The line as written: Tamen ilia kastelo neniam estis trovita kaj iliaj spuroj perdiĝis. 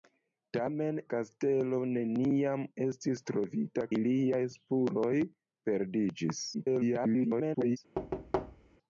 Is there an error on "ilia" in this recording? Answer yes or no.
yes